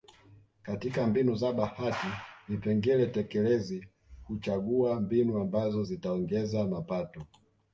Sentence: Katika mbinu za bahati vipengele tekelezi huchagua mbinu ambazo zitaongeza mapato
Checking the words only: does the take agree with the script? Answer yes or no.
yes